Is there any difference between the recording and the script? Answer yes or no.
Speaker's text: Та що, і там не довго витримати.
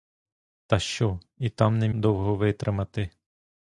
no